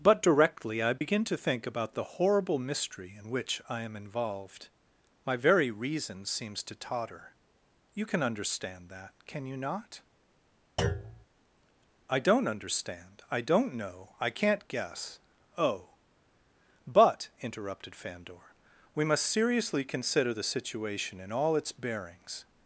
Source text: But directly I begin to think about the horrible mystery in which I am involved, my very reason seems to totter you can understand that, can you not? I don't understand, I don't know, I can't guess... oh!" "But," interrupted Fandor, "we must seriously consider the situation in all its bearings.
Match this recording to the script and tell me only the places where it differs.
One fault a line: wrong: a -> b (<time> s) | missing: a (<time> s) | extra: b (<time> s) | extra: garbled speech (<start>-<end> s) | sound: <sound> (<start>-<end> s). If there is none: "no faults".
sound: dropout (1.0-1.0 s)
sound: thud (10.8-11.3 s)